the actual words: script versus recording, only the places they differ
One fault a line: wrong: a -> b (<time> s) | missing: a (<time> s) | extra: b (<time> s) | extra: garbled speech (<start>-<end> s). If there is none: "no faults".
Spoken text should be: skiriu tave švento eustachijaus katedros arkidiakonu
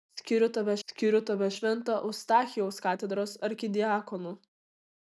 extra: skiriu tave (0.9 s)